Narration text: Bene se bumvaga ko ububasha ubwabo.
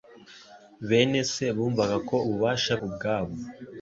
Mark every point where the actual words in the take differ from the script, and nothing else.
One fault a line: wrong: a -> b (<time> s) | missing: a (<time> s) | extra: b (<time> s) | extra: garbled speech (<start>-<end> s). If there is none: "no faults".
no faults